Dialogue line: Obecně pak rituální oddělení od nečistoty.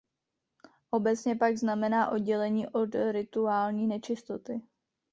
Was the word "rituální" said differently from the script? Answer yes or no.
yes